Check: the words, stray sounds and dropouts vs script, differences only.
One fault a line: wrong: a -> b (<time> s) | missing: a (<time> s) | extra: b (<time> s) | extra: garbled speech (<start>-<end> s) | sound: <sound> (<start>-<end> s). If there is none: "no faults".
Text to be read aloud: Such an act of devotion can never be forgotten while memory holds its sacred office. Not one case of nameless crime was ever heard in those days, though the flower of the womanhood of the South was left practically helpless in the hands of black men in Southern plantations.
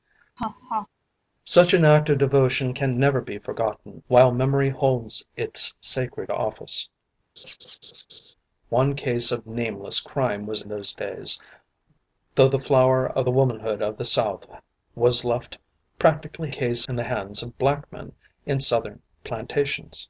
sound: laugh (0.4-0.9 s)
missing: Not (6.9 s)
sound: laugh (7.4-8.3 s)
missing: ever heard in (10.6 s)
wrong: helpless -> case (16.5 s)